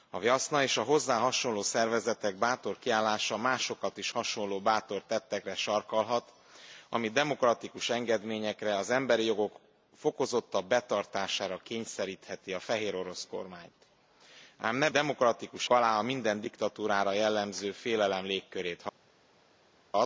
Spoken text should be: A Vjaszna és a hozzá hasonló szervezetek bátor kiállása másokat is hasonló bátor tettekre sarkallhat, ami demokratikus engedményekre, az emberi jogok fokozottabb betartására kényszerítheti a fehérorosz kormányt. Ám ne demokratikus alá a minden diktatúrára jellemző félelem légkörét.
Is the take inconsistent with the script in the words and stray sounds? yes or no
no